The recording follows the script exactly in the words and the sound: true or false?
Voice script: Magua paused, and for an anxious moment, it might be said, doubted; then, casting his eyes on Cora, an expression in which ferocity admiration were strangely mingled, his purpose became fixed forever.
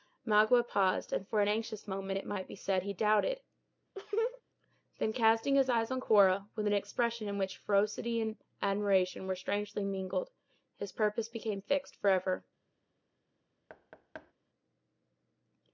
false